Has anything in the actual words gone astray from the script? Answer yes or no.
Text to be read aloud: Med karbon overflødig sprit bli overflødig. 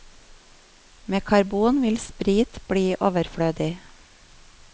yes